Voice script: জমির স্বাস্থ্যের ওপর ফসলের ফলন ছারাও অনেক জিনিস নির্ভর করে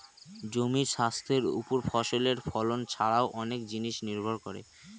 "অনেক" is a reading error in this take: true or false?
false